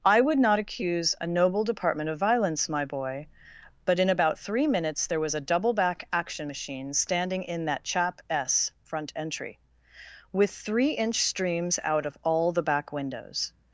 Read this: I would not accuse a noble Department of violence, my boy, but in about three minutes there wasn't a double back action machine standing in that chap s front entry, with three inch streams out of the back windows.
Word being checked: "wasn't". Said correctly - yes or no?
no